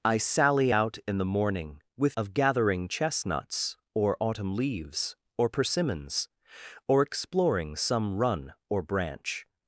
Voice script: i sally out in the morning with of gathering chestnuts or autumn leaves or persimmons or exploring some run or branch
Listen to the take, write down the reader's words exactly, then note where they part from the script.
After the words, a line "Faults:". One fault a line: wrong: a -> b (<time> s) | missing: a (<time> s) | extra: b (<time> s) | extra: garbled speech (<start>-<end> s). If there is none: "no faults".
i sally out in the morning with of gathering chestnuts or autumn leaves or persimmons or exploring some run or branch
Faults:
no faults